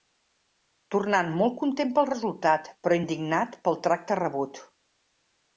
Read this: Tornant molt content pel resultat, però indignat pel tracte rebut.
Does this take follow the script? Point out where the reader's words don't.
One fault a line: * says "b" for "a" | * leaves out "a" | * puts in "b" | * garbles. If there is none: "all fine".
all fine